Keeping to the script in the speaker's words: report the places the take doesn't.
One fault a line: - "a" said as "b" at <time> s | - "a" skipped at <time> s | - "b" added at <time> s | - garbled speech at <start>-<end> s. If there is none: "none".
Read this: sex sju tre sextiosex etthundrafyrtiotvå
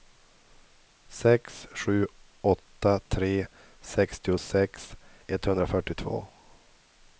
- "åtta" added at 2.4 s